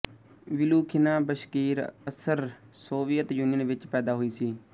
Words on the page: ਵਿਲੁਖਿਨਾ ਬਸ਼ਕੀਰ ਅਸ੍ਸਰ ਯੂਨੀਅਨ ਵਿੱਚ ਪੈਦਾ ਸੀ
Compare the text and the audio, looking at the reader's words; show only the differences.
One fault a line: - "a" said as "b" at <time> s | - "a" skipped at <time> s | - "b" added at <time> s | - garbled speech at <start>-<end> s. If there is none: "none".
- "ਸੋਵੀਅਤ" added at 2.8 s
- "ਹੋਈ" added at 4.1 s